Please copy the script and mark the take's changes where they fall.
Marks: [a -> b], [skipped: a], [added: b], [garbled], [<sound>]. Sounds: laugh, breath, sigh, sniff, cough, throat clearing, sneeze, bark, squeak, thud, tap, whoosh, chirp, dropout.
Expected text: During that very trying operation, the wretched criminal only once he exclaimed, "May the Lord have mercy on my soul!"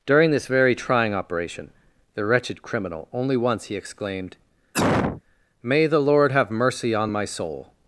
During [that -> this] very trying operation, the wretched criminal only once he exclaimed, [cough] "May the Lord have mercy on my soul!"